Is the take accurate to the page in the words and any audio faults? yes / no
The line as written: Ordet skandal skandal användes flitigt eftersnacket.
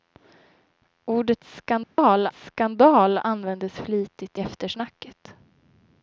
no